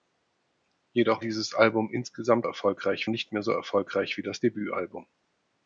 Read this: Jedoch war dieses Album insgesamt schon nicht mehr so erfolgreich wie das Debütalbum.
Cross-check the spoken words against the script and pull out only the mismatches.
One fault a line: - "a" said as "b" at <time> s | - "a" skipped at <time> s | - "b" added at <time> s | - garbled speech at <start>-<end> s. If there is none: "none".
- "war" skipped at 1.2 s
- "schon" said as "erfolgreich" at 2.4 s